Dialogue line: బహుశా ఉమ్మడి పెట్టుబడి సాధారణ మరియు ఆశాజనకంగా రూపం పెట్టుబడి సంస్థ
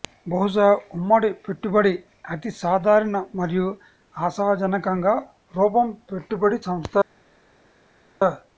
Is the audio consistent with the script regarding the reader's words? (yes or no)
no